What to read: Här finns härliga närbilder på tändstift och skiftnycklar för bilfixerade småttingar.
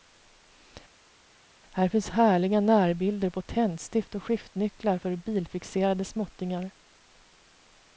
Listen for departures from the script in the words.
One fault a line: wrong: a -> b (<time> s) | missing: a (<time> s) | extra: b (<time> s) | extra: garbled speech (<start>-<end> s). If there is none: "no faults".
no faults